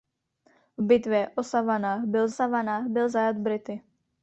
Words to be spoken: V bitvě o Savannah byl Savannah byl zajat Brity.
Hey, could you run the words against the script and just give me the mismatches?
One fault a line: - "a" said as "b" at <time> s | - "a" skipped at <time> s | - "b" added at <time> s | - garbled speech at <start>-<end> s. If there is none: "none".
none